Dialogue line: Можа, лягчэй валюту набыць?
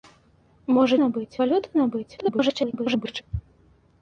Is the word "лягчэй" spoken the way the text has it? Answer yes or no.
no